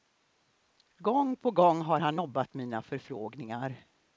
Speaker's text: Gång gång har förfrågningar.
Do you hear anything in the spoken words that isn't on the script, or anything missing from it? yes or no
yes